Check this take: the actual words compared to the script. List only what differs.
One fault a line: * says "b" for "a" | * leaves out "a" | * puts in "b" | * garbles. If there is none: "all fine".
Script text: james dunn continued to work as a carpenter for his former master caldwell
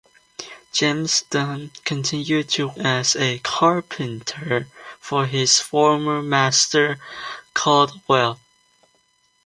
* leaves out "work"